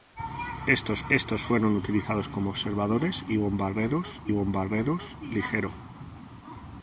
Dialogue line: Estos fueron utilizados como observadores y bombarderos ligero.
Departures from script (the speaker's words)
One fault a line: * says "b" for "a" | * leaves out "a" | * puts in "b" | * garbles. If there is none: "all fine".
* puts in "estos"
* puts in "bombarderos"